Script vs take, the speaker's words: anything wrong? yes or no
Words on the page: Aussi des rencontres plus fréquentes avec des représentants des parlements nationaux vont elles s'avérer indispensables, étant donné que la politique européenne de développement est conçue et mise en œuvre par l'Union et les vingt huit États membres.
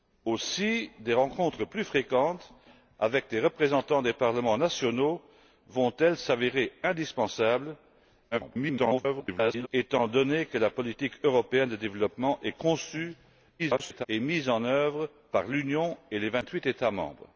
yes